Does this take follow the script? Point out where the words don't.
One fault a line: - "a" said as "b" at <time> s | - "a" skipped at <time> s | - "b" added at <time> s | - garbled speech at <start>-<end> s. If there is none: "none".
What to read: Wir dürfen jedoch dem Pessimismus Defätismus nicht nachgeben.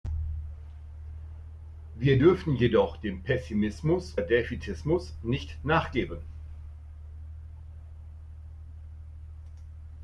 none